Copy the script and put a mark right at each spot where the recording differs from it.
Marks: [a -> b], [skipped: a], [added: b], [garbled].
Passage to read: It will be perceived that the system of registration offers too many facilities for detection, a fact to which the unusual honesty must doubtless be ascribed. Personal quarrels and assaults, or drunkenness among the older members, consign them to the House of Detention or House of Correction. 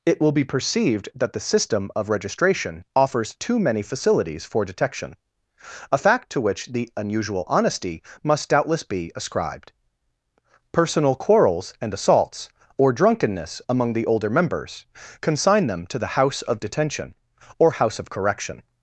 It will be perceived that the system of registration offers too many facilities for detection, a fact to which the unusual honesty must doubtless be ascribed. Personal quarrels and assaults, or drunkenness among the older members, consign them to the House of Detention or House of Correction.